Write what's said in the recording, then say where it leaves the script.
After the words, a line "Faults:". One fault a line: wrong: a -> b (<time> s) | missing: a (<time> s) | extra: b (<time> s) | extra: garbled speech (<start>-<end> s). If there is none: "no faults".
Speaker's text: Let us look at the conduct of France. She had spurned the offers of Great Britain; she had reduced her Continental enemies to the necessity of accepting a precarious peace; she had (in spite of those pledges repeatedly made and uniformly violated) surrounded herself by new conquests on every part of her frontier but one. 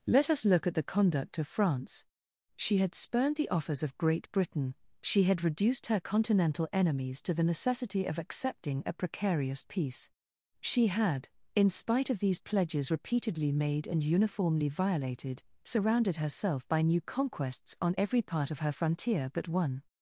Let us look at the conduct of France. She had spurned the offers of Great Britain; she had reduced her Continental enemies to the necessity of accepting a precarious peace; she had (in spite of these pledges repeatedly made and uniformly violated) surrounded herself by new conquests on every part of her frontier but one.
Faults:
wrong: those -> these (12.2 s)